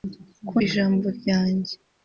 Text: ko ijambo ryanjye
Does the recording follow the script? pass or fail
pass